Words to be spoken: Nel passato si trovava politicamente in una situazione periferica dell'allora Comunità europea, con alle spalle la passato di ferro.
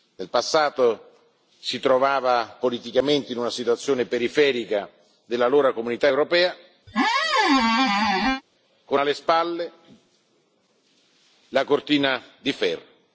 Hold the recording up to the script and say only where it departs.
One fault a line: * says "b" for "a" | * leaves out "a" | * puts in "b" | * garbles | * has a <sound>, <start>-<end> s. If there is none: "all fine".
* has a squeak, 6.9-8.4 s
* says "cortina" for "passato"